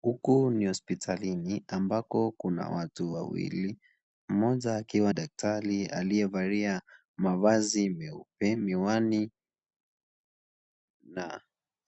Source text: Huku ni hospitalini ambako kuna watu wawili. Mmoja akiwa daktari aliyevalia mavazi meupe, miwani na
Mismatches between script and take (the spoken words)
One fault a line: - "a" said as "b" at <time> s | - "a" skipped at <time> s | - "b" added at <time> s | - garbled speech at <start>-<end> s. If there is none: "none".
none